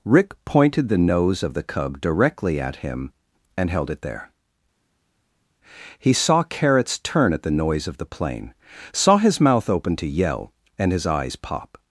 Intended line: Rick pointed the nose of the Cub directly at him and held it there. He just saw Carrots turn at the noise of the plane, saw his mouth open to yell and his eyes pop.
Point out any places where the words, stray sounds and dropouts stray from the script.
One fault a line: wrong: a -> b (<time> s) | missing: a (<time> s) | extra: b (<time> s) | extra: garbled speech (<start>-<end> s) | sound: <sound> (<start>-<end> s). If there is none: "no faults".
missing: just (6.1 s)